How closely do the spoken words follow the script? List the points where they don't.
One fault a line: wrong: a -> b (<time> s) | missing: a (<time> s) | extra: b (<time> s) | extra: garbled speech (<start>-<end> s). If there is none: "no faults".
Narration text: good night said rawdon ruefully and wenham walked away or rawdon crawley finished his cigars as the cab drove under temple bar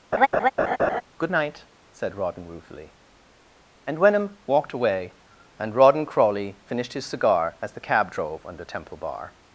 wrong: or -> and (5.6 s)
wrong: cigars -> cigar (7.1 s)